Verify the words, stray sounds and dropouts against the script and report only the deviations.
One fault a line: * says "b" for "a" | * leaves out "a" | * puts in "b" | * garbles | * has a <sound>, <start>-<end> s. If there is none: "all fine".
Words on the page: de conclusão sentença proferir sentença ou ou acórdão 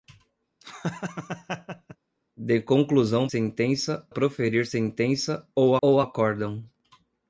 * has a laugh, 0.6-2.0 s